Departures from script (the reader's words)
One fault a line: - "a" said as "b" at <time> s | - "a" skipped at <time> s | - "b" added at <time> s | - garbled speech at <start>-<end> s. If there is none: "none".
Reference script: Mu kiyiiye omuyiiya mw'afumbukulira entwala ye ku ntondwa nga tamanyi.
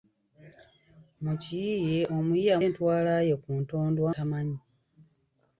- "mw'afumbukulira" skipped at 2.6 s
- "nga" skipped at 4.1 s